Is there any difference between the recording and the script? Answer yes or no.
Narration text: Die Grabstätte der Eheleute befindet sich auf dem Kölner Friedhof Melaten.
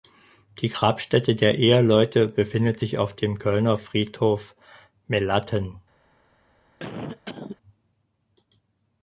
no